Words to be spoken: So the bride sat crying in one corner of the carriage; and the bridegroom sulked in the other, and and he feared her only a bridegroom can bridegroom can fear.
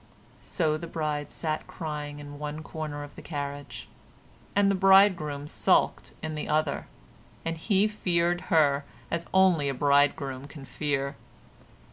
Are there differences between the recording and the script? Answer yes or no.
yes